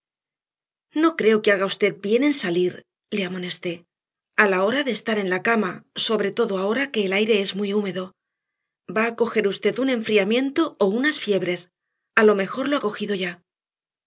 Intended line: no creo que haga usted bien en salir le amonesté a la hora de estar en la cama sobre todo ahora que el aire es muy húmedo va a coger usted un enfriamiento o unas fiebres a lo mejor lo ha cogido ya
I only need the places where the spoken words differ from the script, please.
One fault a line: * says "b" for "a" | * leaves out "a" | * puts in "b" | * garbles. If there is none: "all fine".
all fine